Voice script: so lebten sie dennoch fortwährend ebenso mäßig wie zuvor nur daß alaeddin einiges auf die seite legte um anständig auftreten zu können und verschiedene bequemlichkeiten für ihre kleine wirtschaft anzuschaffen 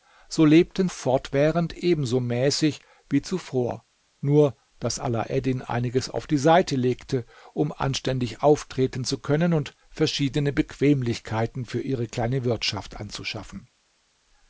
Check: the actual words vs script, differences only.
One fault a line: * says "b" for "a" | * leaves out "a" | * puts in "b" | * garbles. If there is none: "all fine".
* leaves out "sie dennoch"